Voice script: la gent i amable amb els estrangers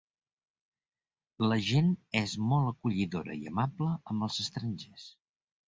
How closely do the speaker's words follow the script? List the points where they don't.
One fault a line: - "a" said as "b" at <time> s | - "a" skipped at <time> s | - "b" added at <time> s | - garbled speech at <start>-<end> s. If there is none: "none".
- "és molt acollidora" added at 2.2 s